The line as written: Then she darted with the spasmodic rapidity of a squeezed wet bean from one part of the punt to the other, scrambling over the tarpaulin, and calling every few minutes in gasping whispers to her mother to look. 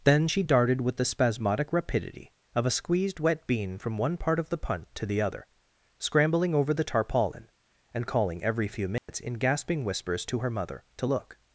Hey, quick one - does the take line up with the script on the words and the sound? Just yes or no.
no